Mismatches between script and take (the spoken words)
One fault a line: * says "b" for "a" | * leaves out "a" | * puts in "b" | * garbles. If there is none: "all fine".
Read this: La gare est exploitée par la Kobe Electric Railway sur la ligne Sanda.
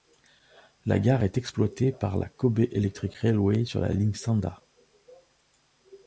all fine